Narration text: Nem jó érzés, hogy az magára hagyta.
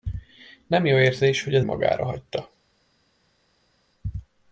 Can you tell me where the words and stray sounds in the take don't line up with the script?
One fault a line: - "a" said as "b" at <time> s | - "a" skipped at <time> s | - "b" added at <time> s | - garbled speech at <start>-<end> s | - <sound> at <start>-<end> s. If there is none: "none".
none